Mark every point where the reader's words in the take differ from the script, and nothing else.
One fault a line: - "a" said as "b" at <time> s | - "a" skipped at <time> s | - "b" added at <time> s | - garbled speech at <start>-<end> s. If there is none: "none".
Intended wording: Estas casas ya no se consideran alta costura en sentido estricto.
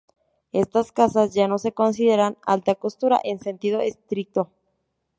none